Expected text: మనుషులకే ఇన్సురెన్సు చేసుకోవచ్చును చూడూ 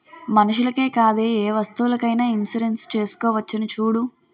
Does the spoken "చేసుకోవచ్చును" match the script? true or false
true